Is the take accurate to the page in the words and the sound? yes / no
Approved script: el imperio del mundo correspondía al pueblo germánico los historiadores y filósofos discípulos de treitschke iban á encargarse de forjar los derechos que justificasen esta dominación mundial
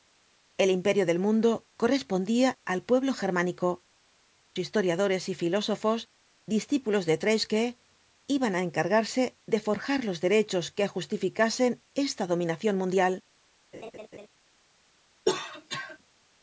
no